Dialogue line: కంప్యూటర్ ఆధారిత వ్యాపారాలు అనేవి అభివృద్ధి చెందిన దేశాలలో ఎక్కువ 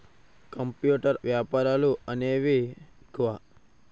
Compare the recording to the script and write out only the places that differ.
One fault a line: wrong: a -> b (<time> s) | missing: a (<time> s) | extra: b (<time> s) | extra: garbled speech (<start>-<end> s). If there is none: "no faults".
missing: ఆధారిత (1.2 s)
missing: అభివృద్ధి చెందిన దేశాలలో (2.6 s)